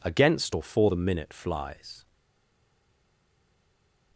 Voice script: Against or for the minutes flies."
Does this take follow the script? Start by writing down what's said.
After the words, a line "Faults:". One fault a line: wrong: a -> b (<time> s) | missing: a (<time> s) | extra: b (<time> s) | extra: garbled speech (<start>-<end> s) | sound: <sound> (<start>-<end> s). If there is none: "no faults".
Against or for the minute flies."
Faults:
wrong: minutes -> minute (1.0 s)